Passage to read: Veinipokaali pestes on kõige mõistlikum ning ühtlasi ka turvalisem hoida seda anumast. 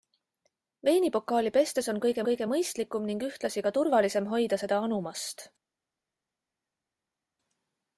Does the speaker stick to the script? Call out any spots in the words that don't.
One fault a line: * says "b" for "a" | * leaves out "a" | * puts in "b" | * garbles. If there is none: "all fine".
* puts in "kõige"